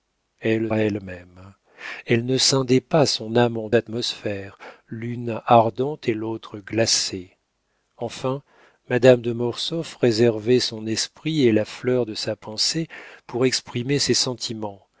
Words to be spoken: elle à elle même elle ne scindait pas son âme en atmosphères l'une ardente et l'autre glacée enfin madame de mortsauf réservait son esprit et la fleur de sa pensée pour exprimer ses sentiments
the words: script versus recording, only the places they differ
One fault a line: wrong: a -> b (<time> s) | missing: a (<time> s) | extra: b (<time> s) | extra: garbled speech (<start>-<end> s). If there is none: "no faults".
no faults